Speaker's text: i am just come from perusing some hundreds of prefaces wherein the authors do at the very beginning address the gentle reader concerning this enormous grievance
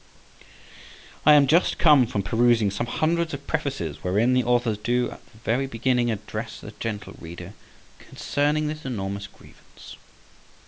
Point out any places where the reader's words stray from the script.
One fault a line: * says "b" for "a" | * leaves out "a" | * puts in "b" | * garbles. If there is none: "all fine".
all fine